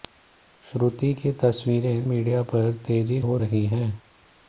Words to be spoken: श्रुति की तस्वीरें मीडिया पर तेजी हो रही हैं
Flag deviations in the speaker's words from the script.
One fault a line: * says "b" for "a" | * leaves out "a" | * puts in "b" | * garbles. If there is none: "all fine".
all fine